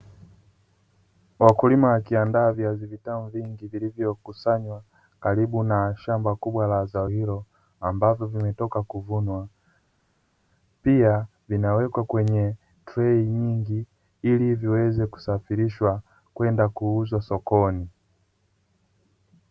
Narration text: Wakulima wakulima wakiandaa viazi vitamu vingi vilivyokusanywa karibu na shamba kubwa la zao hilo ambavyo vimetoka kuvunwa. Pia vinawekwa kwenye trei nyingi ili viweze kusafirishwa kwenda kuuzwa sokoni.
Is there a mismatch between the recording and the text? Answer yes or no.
yes